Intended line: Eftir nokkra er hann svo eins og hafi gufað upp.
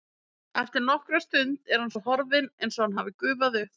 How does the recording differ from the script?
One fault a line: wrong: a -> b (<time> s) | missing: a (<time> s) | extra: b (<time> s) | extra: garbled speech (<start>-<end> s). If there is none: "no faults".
extra: stund (1.2 s)
extra: horfinn (2.0 s)
extra: hann (2.9 s)